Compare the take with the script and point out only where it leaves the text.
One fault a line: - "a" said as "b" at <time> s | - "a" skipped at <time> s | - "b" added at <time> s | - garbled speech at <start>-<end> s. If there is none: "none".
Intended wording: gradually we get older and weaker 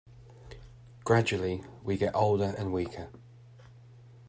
none